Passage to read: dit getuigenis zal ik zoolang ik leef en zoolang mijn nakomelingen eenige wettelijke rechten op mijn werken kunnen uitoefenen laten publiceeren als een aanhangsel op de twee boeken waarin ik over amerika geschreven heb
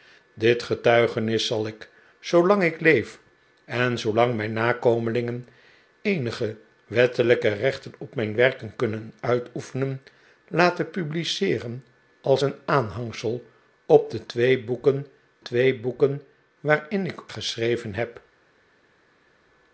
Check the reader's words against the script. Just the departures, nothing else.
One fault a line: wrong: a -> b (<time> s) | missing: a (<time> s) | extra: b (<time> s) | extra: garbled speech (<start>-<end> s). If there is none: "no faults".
extra: twee boeken (15.4 s)
missing: over amerika (17.2 s)